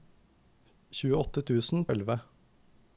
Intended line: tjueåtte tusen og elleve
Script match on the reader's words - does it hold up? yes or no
yes